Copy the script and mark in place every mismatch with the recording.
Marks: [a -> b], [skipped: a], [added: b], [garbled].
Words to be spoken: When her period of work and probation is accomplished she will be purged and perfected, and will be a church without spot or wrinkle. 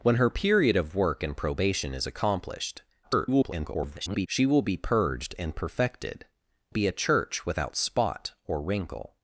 When her period of work and probation is accomplished [garbled] she will be purged and perfected, [skipped: and will] be a church without spot or wrinkle.